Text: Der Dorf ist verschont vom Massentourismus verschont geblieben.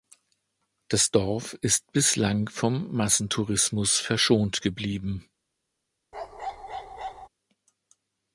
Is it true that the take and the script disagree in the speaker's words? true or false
true